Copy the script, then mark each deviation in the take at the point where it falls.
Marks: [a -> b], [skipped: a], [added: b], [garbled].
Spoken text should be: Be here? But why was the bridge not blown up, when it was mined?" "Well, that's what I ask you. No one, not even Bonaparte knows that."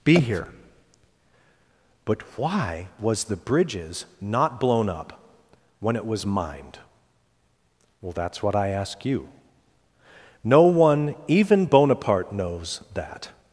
Be here? But why was the [bridge -> bridges] not blown up, when it was mined?" "Well, that's what I ask you. No one, [skipped: not] even Bonaparte knows that."